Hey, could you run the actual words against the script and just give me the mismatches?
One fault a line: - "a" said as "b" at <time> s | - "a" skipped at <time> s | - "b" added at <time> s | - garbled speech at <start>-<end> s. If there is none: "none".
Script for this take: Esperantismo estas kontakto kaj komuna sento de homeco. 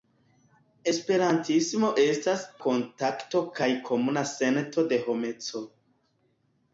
none